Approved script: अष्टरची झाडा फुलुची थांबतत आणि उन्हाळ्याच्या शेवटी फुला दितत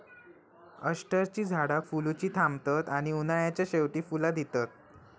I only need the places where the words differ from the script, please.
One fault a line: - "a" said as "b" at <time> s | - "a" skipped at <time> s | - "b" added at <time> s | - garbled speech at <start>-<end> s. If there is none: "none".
none